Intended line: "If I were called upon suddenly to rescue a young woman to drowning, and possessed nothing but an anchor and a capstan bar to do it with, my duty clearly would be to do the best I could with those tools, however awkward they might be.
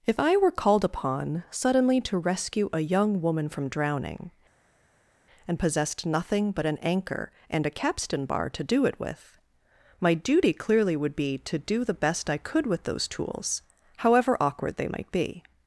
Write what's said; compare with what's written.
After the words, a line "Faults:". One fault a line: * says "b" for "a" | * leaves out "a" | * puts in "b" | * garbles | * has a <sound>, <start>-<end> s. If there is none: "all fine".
"If I were called upon suddenly to rescue a young woman from drowning, and possessed nothing but an anchor and a capstan bar to do it with, my duty clearly would be to do the best I could with those tools, however awkward they might be.
Faults:
* says "from" for "to"